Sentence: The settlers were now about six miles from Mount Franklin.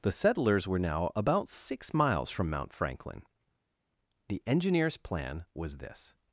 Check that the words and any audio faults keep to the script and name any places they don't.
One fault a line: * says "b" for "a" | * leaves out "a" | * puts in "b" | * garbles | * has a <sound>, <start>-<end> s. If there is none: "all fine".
* puts in "The engineer's plan was this"